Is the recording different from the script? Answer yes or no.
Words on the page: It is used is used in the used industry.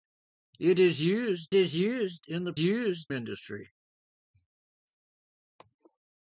no